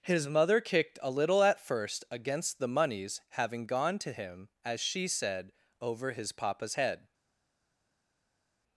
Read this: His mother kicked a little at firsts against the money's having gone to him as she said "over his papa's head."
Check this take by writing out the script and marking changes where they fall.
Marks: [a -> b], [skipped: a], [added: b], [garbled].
His mother kicked a little at [firsts -> first] against the money's having gone to him as she said "over his papa's head."